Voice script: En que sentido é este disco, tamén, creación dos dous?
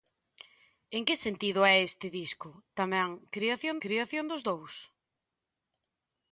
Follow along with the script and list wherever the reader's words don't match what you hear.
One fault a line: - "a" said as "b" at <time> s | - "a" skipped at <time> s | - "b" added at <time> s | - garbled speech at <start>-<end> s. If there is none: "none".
- "creación" added at 3.8 s